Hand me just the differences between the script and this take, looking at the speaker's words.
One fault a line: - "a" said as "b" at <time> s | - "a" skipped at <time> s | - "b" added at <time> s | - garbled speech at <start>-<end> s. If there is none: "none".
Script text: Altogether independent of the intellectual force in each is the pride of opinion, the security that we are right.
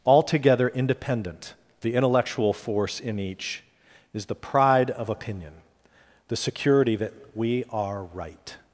- "of" skipped at 1.5 s